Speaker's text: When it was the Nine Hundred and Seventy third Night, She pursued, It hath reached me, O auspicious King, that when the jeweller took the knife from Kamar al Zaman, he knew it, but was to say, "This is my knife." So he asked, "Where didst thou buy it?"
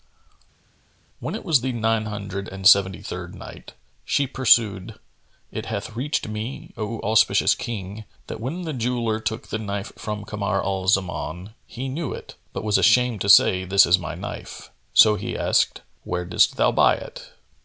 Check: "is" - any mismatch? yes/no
no